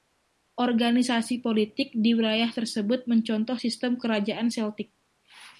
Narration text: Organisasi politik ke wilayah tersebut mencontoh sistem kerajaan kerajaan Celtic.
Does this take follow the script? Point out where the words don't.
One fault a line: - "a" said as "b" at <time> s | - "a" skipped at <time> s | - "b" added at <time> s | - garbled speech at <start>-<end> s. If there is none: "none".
- "ke" said as "di" at 1.9 s
- "kerajaan" skipped at 4.5 s